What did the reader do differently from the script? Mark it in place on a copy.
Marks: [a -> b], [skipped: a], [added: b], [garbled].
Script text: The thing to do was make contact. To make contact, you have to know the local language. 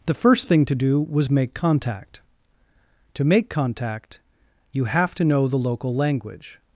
The [added: first] thing to do was make contact. To make contact, you have to know the local language.